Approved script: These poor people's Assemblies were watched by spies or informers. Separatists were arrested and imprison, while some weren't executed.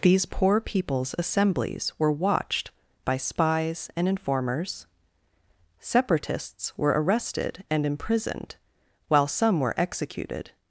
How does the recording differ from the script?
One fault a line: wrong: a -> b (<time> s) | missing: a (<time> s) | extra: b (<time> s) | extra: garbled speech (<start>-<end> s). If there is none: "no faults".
wrong: or -> and (4.0 s)
wrong: imprison -> imprisoned (7.8 s)
wrong: weren't -> were (9.6 s)